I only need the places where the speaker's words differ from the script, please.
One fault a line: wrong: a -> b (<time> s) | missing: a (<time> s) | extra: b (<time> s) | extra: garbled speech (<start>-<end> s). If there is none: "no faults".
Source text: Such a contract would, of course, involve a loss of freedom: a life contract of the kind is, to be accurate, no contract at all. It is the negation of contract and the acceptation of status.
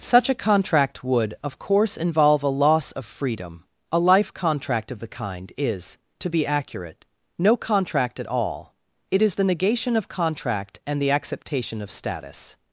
no faults